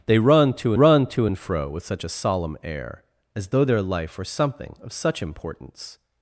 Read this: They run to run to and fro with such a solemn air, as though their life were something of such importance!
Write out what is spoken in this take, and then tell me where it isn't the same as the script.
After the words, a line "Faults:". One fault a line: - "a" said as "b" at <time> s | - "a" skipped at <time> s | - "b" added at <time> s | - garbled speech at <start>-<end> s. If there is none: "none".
They run to run to and fro with such a solemn air, as though their life were something of such importance!
Faults:
none